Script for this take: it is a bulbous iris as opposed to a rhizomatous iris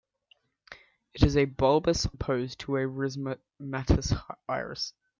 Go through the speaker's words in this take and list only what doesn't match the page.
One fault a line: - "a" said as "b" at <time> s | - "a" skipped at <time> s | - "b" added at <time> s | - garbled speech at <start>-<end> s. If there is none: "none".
- "iris as" skipped at 2.1 s